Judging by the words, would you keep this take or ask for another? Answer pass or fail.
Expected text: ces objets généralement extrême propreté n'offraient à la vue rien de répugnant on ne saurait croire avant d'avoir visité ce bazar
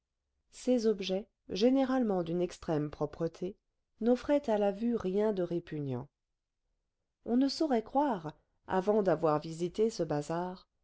fail